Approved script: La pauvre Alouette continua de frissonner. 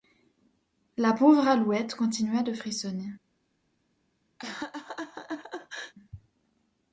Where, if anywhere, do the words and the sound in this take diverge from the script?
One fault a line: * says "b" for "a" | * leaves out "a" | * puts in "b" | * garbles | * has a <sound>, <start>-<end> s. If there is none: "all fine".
* has a laugh, 4.4-5.9 s